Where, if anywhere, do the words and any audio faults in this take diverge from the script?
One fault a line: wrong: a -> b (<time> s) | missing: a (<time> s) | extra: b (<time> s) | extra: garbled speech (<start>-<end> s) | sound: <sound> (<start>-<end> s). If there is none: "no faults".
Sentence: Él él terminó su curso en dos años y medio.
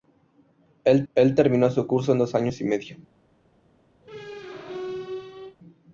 sound: squeak (4.0-5.6 s)